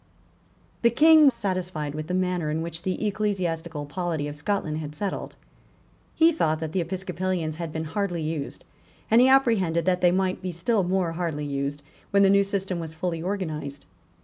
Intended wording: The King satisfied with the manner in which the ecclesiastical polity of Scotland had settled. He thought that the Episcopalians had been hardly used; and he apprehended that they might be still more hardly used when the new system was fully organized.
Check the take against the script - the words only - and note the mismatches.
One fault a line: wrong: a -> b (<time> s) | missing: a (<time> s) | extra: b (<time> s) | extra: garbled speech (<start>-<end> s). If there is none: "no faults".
no faults